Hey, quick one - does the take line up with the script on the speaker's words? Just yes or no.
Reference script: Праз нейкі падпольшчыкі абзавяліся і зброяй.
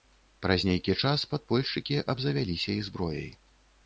no